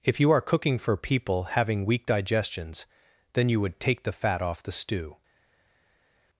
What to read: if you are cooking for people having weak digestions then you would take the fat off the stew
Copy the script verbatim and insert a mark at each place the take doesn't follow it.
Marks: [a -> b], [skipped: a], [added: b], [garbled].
if you are cooking for people having weak digestions then you would take the fat off the stew